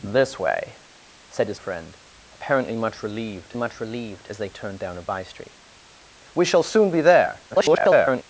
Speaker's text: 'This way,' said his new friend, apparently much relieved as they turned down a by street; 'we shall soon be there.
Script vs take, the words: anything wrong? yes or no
yes